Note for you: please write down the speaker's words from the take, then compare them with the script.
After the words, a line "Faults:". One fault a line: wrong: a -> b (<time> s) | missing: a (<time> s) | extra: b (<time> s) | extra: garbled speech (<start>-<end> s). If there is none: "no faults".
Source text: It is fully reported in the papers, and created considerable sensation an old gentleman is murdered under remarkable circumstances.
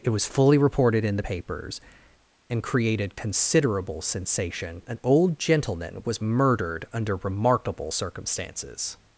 It was fully reported in the papers, and created considerable sensation an old gentleman was murdered under remarkable circumstances.
Faults:
wrong: is -> was (0.1 s)
wrong: is -> was (6.0 s)